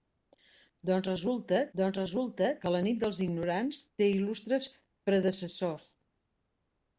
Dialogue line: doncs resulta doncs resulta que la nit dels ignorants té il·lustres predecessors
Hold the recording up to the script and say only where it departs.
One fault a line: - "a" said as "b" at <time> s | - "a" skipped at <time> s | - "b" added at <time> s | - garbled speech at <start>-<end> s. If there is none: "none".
none